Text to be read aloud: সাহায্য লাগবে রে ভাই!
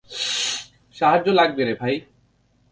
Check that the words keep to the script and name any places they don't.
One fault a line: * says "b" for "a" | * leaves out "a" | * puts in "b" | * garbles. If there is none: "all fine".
all fine